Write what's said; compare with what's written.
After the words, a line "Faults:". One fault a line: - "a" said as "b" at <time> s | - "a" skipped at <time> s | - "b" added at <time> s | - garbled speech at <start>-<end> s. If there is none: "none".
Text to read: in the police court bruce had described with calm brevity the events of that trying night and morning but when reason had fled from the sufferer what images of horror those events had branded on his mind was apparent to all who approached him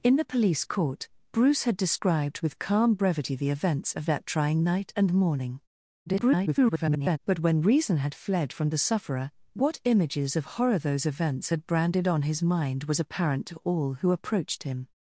in the police court bruce had described with calm brevity the events of that trying night and morning [garbled] but when reason had fled from the sufferer what images of horror those events had branded on his mind was apparent to all who approached him
Faults:
- garbled speech at 6.1-7.2 s